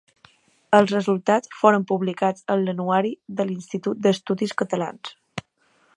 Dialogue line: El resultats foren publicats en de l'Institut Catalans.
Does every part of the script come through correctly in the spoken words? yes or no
no